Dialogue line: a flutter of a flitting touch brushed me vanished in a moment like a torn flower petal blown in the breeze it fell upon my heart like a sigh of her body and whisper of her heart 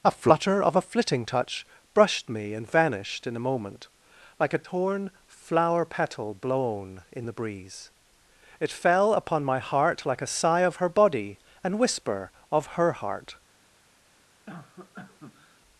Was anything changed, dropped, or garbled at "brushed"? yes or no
no